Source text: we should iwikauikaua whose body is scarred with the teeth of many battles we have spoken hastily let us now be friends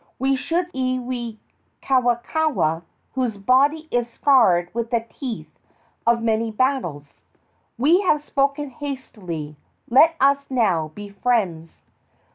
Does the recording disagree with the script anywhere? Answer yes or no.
no